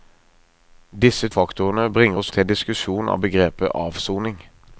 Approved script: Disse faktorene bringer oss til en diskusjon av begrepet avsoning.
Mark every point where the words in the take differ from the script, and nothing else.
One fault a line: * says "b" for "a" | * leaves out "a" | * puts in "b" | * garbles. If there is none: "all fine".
all fine